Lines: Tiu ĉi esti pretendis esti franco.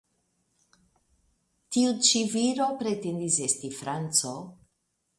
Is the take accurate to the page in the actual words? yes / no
no